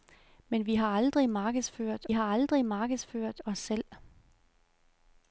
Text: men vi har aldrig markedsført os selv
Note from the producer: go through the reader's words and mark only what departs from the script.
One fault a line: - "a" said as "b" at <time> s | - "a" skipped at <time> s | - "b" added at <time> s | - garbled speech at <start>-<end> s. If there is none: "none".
- "har aldrig markedsført" added at 2.1 s